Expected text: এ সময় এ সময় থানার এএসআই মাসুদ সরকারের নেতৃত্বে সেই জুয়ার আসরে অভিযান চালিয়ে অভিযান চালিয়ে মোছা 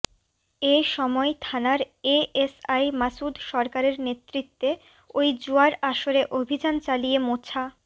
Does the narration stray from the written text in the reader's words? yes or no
yes